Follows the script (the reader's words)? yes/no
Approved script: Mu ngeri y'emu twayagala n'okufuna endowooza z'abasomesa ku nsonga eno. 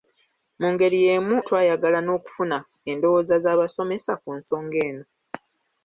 yes